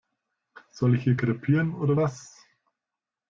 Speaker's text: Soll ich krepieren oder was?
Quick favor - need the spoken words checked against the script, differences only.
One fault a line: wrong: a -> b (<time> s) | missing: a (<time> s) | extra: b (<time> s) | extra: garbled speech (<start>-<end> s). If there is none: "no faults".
extra: hier (1.0 s)